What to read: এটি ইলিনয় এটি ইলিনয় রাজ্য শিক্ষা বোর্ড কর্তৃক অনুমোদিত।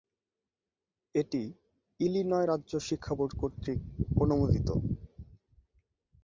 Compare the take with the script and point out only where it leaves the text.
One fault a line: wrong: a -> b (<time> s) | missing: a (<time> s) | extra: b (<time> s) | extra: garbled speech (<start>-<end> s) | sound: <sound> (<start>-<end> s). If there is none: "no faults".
missing: এটি ইলিনয় (2.5 s)